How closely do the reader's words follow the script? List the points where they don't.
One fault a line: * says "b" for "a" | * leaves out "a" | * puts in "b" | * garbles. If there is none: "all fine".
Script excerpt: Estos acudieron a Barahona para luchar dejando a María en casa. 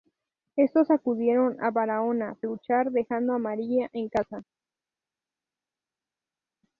* leaves out "para"